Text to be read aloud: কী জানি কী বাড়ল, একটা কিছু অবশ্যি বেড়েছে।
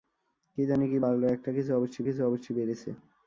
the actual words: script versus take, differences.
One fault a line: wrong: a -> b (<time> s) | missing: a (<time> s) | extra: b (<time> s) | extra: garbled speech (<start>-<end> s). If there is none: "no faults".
extra: কিছু অবশ্যি (2.1 s)